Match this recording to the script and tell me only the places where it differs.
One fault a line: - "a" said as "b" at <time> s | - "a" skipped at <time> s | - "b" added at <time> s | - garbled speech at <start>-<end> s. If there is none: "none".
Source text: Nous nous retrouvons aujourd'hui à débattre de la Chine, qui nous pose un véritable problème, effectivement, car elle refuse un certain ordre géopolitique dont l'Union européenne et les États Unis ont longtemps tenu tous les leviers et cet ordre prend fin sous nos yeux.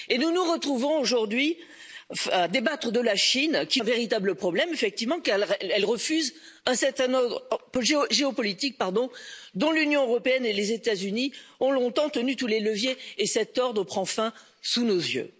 - "nous pose" skipped at 3.8 s